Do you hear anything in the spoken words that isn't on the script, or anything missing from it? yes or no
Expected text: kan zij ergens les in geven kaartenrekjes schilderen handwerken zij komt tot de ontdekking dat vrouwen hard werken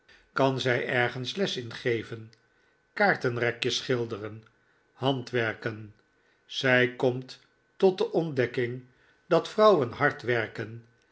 no